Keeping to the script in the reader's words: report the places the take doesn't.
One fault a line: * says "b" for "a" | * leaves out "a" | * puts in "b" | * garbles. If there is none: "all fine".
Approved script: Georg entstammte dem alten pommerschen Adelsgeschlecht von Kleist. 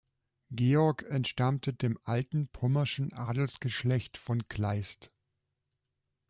all fine